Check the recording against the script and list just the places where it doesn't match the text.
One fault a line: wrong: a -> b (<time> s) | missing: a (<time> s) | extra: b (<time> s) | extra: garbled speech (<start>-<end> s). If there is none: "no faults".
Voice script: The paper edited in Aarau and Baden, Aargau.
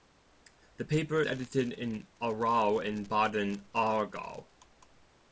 no faults